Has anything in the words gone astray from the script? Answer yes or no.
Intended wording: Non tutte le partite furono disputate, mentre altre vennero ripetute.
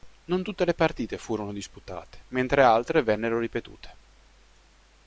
no